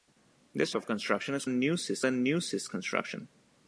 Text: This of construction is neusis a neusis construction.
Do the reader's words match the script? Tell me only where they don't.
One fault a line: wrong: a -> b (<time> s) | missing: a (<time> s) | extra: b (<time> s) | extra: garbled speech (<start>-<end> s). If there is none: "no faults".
no faults